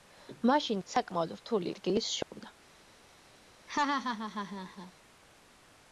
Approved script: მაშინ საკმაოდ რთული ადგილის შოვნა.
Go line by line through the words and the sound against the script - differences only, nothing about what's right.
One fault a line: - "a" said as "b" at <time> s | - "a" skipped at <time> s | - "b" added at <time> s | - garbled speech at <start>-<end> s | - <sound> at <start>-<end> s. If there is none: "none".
- dropout at 2.2-2.3 s
- laugh at 3.7-4.9 s